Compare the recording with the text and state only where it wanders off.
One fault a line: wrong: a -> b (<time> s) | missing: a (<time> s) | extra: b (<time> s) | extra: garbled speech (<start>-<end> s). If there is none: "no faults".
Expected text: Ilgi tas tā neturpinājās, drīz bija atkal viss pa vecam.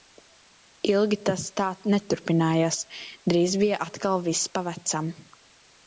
no faults